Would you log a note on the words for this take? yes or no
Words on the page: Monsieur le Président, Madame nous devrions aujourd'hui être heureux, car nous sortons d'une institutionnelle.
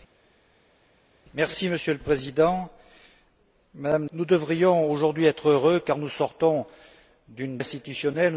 no